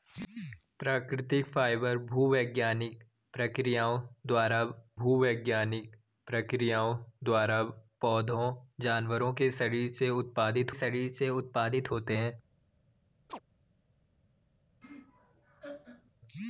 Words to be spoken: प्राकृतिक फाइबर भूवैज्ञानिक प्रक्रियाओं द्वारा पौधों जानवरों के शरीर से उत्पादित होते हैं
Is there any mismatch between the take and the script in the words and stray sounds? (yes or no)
yes